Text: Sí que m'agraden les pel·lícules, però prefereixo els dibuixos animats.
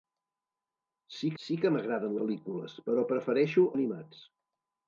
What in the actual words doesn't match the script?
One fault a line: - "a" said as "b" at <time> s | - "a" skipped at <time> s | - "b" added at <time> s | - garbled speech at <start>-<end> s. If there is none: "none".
- "sí" added at 1.4 s
- "les" skipped at 2.2 s
- "els dibuixos" skipped at 3.7 s